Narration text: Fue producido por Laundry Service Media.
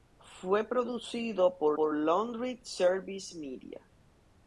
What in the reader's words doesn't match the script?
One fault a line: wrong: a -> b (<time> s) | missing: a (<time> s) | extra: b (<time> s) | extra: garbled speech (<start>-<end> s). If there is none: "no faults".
extra: por (1.8 s)